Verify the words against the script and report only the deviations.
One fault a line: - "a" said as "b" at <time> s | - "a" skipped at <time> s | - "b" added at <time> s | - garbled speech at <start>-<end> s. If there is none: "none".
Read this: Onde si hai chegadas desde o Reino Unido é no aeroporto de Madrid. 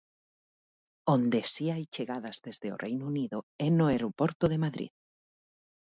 none